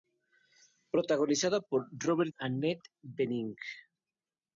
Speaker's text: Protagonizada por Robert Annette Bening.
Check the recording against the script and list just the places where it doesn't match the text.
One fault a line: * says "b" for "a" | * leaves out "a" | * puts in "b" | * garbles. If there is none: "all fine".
all fine